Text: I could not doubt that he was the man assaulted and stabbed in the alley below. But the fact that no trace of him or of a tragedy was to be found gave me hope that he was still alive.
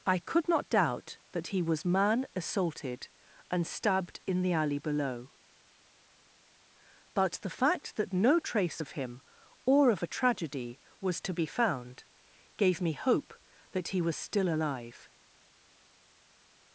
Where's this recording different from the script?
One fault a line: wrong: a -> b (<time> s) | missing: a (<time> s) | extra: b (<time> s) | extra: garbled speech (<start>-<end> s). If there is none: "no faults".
missing: the (1.9 s)